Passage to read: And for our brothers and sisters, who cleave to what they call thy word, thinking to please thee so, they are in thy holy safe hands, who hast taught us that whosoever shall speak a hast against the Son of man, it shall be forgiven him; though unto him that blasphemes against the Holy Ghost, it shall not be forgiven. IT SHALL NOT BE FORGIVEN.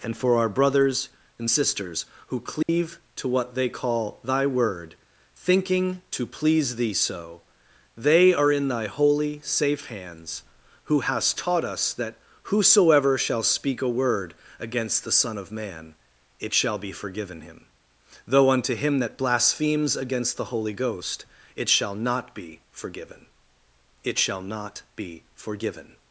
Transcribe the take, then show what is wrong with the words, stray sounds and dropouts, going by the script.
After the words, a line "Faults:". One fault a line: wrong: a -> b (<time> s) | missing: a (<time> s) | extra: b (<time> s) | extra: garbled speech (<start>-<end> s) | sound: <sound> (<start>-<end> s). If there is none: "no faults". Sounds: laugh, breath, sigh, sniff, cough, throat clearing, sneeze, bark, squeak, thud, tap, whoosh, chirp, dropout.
And for our brothers and sisters, who cleave to what they call thy word, thinking to please thee so, they are in thy holy safe hands, who hast taught us that whosoever shall speak a word against the Son of man, it shall be forgiven him; though unto him that blasphemes against the Holy Ghost, it shall not be forgiven. IT SHALL NOT BE FORGIVEN.
Faults:
sound: dropout (2.6-2.7 s)
wrong: hast -> word (13.9 s)